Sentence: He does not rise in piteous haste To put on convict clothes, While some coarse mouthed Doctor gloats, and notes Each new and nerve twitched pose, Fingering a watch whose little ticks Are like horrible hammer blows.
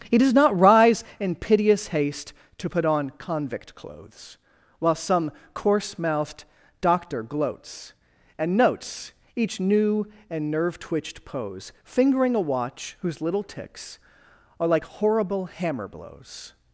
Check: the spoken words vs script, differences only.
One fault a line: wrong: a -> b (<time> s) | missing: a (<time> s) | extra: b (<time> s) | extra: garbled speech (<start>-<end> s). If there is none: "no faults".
no faults